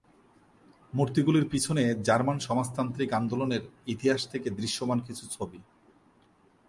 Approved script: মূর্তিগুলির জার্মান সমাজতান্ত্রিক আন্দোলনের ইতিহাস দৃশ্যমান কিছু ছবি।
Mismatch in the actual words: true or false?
true